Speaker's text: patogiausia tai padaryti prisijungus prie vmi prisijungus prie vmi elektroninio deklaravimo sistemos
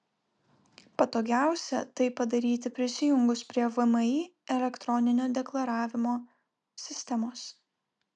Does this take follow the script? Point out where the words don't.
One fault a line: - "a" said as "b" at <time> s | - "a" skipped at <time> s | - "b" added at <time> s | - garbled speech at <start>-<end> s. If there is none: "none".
- "prisijungus prie vmi" skipped at 4.1 s